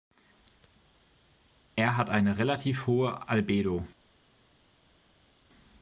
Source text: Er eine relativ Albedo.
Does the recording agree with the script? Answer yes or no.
no